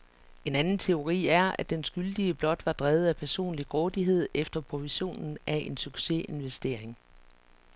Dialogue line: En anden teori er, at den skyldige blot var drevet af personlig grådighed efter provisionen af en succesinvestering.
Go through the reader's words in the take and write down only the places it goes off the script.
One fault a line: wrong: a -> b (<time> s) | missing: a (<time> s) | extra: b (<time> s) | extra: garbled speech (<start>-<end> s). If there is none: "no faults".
no faults